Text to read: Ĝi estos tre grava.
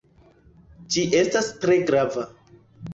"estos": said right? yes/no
no